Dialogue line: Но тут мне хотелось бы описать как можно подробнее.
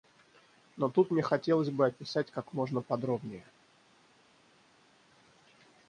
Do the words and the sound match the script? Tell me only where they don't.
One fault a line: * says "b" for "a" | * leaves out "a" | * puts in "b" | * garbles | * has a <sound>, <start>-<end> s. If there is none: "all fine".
all fine